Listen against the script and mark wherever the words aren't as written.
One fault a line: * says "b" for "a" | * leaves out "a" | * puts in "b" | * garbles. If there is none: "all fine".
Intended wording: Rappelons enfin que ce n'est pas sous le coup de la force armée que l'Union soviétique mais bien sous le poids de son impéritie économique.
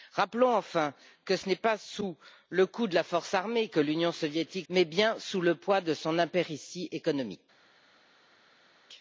all fine